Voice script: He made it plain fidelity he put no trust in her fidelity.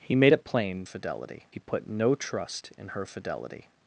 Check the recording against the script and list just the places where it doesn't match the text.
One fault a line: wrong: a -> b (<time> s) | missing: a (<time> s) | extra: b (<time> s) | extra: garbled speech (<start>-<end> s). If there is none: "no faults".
no faults